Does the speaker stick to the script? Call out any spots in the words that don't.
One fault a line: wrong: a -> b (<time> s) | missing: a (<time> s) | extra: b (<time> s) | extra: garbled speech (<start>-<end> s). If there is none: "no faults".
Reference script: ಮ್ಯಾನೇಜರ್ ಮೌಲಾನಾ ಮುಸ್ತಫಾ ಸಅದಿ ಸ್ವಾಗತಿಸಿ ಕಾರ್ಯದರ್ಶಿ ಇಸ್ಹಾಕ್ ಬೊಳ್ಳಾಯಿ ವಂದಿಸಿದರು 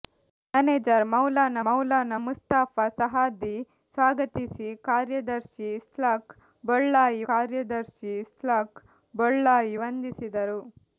extra: ಮೌಲಾನಾ (1.6 s)
extra: ಕಾರ್ಯದರ್ಶಿ ಇಸ್ಹಾಕ್ ಬೊಳ್ಳಾಯಿ (7.3 s)